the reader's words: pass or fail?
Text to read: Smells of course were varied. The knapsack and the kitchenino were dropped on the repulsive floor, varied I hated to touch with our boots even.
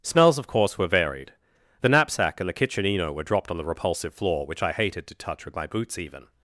fail